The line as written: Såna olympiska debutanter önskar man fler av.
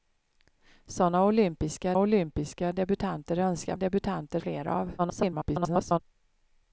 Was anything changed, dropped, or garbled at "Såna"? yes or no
no